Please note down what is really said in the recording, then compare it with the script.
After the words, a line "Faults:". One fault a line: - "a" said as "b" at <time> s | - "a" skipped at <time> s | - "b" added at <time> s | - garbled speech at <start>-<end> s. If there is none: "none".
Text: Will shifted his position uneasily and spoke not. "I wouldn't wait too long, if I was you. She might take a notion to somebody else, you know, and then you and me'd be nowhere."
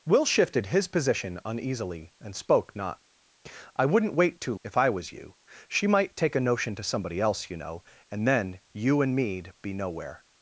Will shifted his position uneasily and spoke not. "I wouldn't wait too if I was you. She might take a notion to somebody else, you know, and then you and me'd be nowhere."
Faults:
- "long" skipped at 4.5 s